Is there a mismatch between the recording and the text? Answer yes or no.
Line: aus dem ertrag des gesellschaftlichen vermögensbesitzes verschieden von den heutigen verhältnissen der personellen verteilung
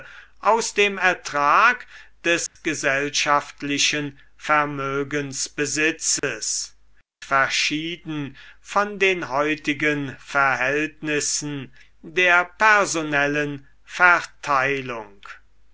no